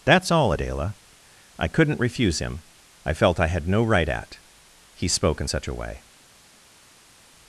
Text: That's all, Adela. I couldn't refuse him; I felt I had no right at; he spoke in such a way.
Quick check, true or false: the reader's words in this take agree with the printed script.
true